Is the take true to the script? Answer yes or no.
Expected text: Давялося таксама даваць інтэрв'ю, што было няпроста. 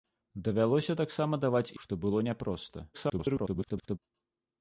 no